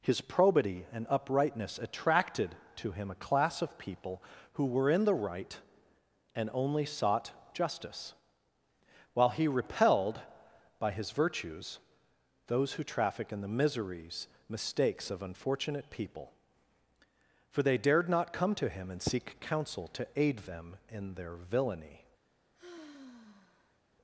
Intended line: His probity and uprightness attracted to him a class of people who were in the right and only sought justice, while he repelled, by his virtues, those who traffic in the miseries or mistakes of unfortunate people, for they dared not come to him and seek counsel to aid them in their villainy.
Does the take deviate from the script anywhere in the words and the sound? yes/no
yes